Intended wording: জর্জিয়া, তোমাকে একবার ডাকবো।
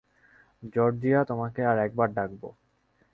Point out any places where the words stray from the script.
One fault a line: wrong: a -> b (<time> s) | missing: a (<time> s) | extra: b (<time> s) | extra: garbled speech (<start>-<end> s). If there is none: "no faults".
extra: আর (1.6 s)